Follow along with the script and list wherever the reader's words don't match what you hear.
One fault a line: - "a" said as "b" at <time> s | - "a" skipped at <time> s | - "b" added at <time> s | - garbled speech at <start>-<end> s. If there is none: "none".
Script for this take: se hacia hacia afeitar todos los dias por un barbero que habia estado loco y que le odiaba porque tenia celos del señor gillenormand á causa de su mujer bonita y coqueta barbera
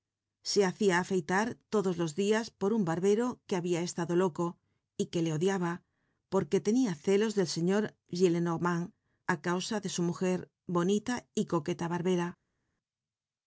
- "hacia" skipped at 0.9 s